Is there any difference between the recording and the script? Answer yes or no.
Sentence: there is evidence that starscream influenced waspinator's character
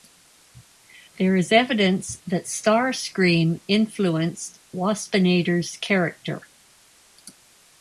no